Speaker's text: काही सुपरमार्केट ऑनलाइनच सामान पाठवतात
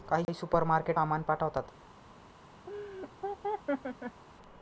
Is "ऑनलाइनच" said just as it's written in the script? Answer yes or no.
no